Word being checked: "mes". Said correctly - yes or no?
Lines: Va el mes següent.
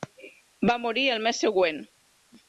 yes